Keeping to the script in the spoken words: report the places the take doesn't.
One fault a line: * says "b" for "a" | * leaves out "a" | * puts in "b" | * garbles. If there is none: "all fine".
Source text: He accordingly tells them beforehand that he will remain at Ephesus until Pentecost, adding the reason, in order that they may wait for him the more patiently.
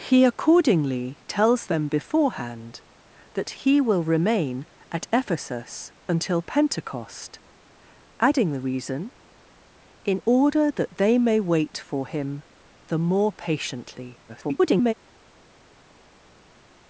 * garbles